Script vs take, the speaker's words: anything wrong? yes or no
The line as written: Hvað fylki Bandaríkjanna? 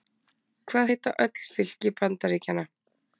yes